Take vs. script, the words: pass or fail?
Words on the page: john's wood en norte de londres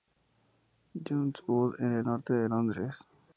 fail